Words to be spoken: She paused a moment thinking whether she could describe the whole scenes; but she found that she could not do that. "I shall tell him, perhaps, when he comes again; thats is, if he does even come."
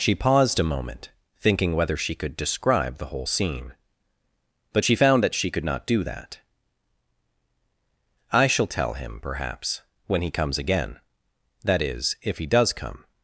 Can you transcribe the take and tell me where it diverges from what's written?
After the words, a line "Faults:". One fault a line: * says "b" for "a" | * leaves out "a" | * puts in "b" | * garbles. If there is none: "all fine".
She paused a moment thinking whether she could describe the whole scene; but she found that she could not do that. "I shall tell him, perhaps, when he comes again; that is, if he does come."
Faults:
* says "scene" for "scenes"
* says "that" for "thats"
* leaves out "even"